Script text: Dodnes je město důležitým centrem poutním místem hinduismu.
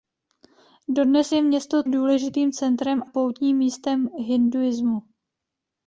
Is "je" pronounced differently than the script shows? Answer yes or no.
no